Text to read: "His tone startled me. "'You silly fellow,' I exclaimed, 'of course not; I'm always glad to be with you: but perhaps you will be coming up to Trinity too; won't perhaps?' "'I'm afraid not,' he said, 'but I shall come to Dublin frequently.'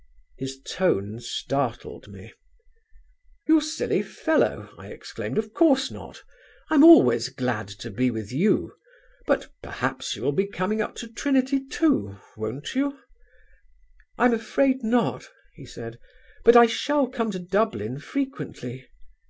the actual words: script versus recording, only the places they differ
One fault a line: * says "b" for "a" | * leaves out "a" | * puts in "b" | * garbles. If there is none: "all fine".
* says "you" for "perhaps"